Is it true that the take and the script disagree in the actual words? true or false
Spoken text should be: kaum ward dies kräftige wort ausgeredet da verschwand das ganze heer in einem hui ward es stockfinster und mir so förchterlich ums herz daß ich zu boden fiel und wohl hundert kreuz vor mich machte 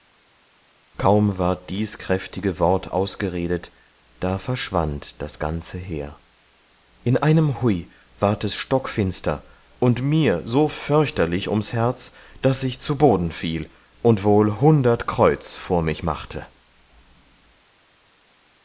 false